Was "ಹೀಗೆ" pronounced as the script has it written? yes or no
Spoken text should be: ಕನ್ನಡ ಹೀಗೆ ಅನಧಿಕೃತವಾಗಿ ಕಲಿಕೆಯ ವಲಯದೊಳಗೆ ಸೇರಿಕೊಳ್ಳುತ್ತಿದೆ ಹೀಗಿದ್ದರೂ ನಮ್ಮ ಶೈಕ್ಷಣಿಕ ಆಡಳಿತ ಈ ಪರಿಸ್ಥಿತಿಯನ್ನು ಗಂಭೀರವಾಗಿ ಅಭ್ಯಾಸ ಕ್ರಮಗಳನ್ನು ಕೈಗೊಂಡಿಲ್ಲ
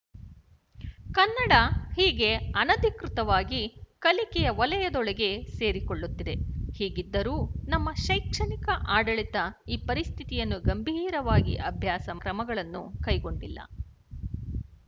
yes